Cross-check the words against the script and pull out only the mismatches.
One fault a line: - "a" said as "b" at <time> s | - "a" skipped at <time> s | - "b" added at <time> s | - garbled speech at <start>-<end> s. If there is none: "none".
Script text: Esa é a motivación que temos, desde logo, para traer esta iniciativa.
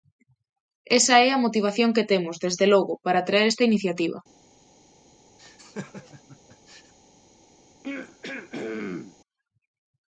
none